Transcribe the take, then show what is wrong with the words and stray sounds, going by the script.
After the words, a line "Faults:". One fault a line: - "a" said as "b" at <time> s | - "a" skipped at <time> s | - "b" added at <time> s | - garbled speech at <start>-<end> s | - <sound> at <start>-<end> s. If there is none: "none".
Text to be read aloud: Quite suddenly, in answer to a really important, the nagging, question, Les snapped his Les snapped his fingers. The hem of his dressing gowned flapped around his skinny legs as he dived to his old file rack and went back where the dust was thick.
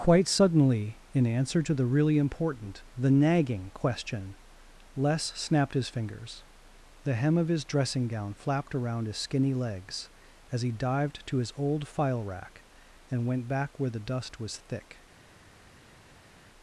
Quite suddenly, in answer to the really important, the nagging, question, Les snapped his fingers. The hem of his dressing gown flapped around his skinny legs as he dived to his old file rack and went back where the dust was thick.
Faults:
- "a" said as "the" at 1.8 s
- "Les snapped his" skipped at 5.9 s
- "gowned" said as "gown" at 8.1 s